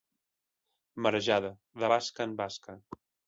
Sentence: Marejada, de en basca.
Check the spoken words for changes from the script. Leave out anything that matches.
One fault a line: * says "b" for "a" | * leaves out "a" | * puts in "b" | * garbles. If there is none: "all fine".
* puts in "basca"